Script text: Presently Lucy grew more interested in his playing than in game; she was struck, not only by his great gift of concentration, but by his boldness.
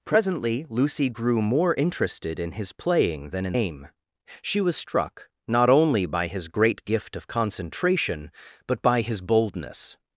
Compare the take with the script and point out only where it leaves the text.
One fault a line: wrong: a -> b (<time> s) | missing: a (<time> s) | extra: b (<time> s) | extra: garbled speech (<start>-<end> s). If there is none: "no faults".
no faults